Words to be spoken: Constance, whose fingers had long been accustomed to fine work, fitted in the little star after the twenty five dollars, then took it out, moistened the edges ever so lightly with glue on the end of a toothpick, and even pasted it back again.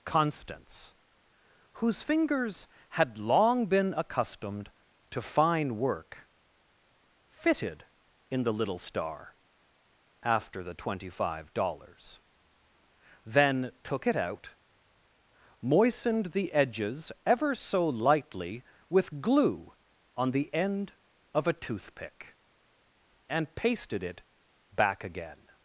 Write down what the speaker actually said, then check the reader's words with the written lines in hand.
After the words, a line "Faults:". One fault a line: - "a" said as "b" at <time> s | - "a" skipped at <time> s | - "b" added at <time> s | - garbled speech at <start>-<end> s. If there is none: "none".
Constance, whose fingers had long been accustomed to fine work, fitted in the little star after the twenty five dollars, then took it out, moistened the edges ever so lightly with glue on the end of a toothpick, and pasted it back again.
Faults:
- "even" skipped at 23.6 s